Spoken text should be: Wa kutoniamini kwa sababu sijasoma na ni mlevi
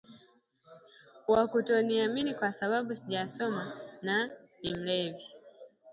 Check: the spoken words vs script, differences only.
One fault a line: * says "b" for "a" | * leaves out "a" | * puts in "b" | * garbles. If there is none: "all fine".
all fine